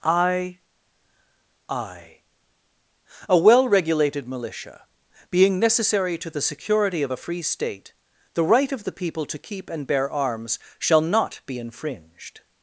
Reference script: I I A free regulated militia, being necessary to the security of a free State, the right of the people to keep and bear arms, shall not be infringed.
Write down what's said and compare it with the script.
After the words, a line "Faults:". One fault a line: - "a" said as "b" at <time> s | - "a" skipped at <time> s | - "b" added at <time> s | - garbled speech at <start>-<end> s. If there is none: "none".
I I A well regulated militia, being necessary to the security of a free State, the right of the people to keep and bear arms, shall not be infringed.
Faults:
- "free" said as "well" at 3.4 s